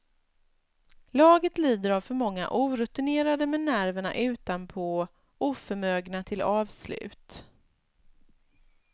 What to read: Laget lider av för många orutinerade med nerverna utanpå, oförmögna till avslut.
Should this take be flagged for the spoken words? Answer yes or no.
no